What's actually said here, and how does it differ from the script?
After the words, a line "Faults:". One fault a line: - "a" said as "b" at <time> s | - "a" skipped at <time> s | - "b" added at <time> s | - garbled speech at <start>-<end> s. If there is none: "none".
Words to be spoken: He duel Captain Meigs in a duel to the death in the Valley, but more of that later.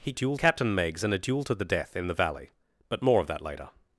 He duel Captain Meigs in a duel to the death in the Valley, but more of that later.
Faults:
none